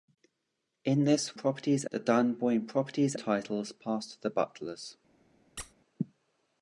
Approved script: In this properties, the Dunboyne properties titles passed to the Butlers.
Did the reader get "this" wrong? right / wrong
right